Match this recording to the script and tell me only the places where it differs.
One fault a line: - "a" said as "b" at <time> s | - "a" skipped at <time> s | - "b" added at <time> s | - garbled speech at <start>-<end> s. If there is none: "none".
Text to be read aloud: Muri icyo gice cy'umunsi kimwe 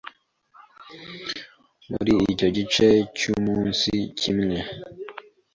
none